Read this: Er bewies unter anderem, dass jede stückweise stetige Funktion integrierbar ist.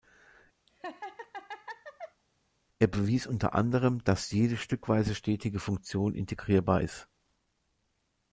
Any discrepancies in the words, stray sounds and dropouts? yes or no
yes